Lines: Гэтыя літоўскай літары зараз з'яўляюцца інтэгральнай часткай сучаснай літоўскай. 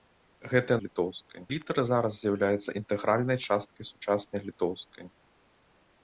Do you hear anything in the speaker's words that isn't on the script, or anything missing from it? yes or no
no